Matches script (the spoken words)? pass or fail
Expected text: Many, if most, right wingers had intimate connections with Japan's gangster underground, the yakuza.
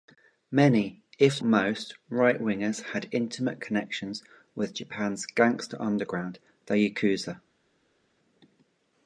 pass